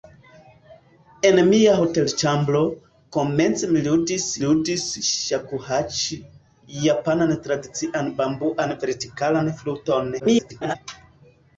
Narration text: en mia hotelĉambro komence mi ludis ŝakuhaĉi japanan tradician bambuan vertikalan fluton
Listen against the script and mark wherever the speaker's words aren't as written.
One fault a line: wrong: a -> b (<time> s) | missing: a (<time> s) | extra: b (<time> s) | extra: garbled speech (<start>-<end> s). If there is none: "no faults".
extra: ludis (4.4 s)
extra: garbled speech (10.2-10.8 s)